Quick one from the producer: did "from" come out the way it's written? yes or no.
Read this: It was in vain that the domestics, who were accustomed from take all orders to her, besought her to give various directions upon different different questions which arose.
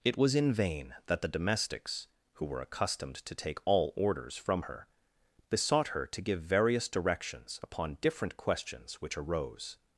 no